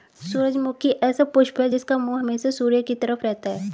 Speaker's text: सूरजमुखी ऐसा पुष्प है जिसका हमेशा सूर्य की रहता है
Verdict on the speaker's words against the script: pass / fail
fail